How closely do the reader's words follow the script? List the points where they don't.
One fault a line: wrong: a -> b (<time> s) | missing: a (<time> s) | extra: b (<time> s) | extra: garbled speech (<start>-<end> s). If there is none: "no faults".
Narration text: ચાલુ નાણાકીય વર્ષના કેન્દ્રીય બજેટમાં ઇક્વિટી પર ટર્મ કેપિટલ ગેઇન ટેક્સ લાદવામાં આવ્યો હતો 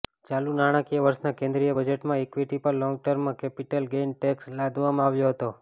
extra: લોંગ (2.8 s)